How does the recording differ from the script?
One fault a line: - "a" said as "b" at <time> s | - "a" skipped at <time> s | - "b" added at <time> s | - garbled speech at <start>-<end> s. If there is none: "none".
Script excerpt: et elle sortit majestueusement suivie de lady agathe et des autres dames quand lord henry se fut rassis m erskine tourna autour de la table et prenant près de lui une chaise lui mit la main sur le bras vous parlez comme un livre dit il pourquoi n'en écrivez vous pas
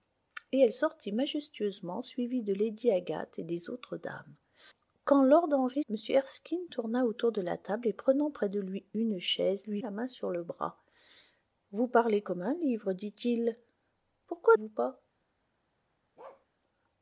- "se fut rassis" skipped at 5.8 s
- "mit" skipped at 9.8 s
- "n'en écrivez" skipped at 14.6 s